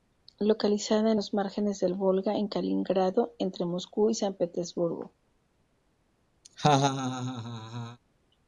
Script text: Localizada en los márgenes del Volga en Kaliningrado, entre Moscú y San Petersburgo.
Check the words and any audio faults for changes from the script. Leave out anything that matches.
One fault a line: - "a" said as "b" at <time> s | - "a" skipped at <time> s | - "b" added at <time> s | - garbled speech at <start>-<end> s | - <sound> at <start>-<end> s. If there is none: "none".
- laugh at 6.4-8.0 s